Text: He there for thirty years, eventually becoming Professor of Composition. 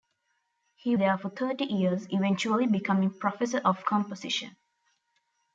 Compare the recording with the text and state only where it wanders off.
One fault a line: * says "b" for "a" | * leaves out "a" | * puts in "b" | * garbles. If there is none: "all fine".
all fine